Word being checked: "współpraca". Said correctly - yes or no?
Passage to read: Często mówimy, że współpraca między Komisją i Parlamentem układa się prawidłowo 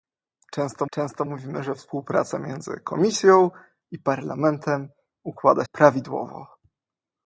yes